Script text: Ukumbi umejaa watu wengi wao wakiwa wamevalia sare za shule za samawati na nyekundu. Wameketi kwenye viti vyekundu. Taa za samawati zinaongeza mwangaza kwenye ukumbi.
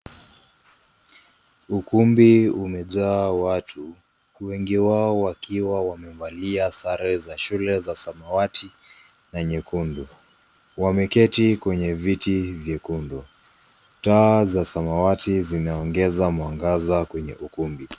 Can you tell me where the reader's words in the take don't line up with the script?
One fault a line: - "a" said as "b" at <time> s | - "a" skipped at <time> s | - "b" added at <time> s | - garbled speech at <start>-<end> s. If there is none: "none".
none